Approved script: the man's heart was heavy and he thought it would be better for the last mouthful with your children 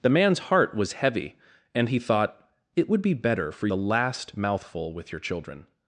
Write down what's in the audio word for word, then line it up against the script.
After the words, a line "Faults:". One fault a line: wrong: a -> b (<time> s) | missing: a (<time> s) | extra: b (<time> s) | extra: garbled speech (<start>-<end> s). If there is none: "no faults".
the man's heart was heavy and he thought it would be better for the last mouthful with your children
Faults:
no faults